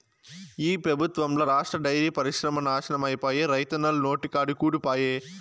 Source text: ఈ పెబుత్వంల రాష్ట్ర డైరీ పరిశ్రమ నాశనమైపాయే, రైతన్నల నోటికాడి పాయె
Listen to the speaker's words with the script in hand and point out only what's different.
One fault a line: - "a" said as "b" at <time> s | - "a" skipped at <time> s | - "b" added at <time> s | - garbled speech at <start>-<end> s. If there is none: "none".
- "కూడు" added at 4.5 s